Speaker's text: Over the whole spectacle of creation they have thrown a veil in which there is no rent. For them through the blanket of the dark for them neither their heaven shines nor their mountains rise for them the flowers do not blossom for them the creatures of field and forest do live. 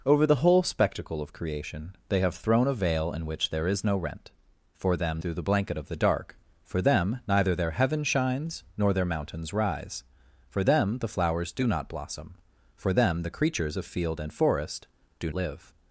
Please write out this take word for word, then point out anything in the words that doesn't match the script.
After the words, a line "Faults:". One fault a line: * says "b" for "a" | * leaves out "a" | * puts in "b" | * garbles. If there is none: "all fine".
Over the whole spectacle of creation they have thrown a veil in which there is no rent. For them through the blanket of the dark for them neither their heaven shines nor their mountains rise for them the flowers do not blossom for them the creatures of field and forest do live.
Faults:
all fine